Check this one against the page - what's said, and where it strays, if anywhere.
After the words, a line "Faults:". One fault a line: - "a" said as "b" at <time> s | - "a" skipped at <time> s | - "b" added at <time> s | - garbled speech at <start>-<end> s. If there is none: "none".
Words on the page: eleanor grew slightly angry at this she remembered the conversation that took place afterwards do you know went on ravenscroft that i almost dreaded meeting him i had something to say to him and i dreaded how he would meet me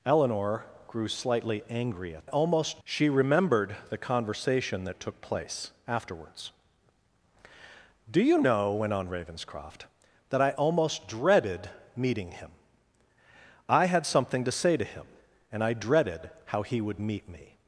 eleanor grew slightly angry at almost she remembered the conversation that took place afterwards do you know went on ravenscroft that i almost dreaded meeting him i had something to say to him and i dreaded how he would meet me
Faults:
- "this" said as "almost" at 2.3 s